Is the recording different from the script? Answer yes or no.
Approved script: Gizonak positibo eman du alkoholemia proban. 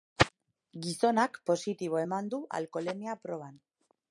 no